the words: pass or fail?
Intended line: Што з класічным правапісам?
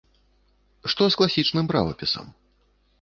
pass